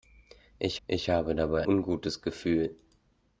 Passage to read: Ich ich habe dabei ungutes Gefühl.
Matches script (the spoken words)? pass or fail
pass